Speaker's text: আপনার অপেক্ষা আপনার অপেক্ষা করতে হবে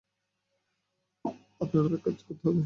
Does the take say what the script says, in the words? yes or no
no